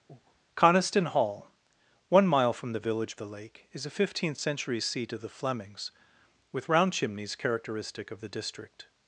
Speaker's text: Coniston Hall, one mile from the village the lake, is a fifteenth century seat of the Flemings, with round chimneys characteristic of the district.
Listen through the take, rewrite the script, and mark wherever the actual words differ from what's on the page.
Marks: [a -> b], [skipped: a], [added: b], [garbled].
Coniston Hall, one mile from the village the lake, is a fifteenth century seat of the Flemings, with round chimneys characteristic of the district.